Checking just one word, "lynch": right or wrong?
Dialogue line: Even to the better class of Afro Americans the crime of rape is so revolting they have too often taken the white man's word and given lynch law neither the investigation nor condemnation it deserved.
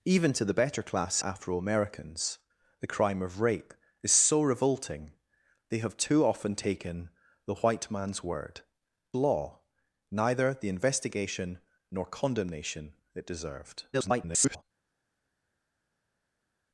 wrong